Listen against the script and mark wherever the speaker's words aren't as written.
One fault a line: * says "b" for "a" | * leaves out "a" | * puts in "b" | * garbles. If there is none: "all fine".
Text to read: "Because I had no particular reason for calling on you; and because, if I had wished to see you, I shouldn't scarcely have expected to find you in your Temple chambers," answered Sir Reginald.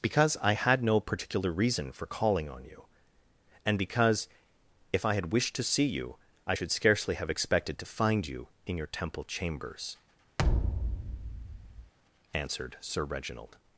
* says "should" for "shouldn't"